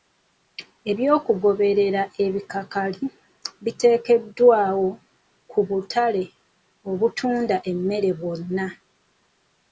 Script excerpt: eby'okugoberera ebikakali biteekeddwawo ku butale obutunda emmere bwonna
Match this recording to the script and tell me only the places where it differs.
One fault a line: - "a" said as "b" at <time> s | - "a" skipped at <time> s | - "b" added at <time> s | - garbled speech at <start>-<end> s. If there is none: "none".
none